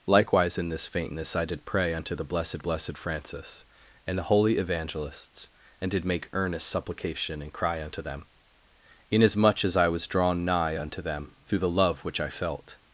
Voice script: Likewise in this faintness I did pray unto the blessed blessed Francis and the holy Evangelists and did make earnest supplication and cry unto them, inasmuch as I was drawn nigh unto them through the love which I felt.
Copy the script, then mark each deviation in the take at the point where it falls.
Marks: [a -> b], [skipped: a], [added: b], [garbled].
Likewise in this faintness I did pray unto the blessed blessed Francis and the holy Evangelists and did make earnest supplication and cry unto them, inasmuch as I was drawn nigh unto them through the love which I felt.